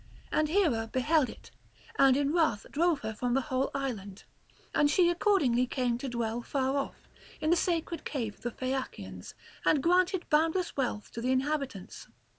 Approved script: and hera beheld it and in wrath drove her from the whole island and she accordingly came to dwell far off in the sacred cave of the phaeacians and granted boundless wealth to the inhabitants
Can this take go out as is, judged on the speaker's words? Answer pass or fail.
pass